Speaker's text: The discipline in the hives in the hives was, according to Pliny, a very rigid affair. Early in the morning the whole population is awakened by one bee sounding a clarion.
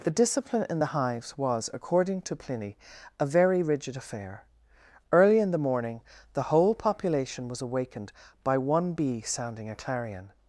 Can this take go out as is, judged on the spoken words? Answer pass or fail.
fail